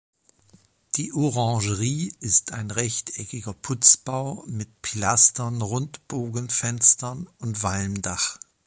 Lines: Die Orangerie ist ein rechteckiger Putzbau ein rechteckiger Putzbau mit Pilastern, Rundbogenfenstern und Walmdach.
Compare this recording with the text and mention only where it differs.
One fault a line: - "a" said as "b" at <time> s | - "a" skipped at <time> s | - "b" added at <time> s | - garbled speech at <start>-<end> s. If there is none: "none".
- "ein rechteckiger Putzbau" skipped at 4.4 s